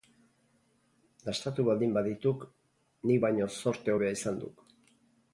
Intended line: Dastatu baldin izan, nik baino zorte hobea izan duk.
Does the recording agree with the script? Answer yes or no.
no